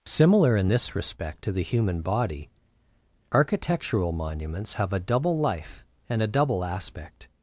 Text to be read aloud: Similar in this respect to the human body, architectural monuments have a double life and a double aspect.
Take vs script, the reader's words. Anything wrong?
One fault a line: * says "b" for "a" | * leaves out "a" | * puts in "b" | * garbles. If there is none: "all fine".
all fine